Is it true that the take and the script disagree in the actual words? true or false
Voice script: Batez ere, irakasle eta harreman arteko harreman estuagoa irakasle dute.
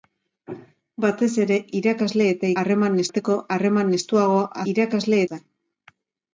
false